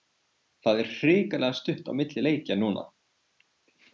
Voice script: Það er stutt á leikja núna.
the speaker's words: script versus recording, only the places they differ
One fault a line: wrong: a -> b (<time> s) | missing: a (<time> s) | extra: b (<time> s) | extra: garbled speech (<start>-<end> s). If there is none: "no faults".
extra: hrikalega (0.9 s)
extra: milli (2.0 s)